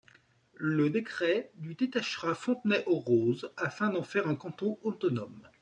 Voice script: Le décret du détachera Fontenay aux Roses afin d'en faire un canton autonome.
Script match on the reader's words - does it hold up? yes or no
yes